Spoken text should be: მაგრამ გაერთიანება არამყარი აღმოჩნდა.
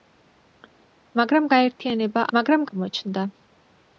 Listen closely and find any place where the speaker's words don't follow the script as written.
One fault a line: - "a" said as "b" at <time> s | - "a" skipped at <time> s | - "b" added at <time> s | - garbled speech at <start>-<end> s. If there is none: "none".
- "არამყარი" said as "მაგრამ" at 2.4 s